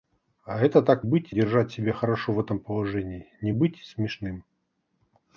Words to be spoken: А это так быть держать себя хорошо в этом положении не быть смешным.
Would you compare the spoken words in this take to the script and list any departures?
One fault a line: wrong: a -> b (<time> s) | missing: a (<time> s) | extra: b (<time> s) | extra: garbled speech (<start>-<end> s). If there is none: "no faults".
no faults